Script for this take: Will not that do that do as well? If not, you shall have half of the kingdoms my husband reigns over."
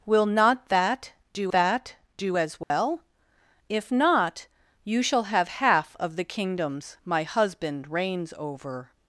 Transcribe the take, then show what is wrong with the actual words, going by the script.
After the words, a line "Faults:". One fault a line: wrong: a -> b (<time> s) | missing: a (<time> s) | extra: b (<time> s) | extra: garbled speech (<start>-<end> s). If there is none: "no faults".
Will not that do that do as well? If not, you shall have half of the kingdoms my husband reigns over."
Faults:
no faults